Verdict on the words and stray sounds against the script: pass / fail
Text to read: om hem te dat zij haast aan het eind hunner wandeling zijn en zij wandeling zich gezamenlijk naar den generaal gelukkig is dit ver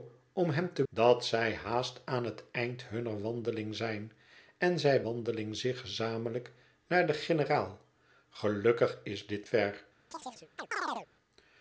fail